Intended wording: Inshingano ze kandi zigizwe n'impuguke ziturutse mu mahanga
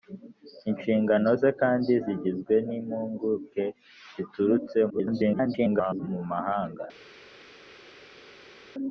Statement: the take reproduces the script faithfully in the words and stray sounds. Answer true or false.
false